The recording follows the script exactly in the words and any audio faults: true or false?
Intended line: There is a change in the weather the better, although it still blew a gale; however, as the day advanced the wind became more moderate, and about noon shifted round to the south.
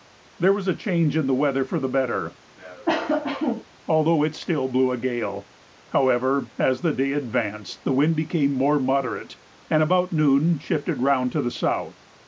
false